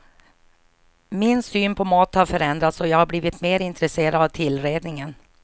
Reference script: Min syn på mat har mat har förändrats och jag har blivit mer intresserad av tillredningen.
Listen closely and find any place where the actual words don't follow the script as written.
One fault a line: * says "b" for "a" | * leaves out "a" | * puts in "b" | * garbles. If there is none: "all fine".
* leaves out "mat har"